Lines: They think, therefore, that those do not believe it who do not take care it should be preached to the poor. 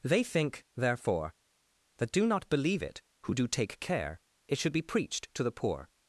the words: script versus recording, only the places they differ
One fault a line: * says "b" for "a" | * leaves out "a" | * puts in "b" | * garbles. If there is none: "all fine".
* leaves out "those"
* leaves out "not"